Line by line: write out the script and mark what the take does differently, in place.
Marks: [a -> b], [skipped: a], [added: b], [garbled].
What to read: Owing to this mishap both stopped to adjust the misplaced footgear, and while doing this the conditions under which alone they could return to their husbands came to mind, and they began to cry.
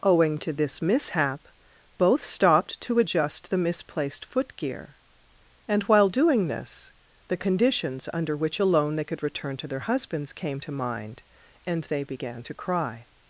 Owing to this mishap both stopped to adjust the misplaced footgear, and while doing this the conditions under which alone they could return to their husbands came to mind, and they began to cry.